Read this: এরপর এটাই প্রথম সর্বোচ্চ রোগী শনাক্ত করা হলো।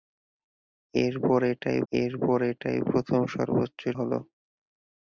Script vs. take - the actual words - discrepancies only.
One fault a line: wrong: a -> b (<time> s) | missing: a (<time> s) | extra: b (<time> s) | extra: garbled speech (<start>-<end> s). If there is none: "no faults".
extra: এরপর এটাই (1.9 s)
missing: রোগী শনাক্ত করা (3.8 s)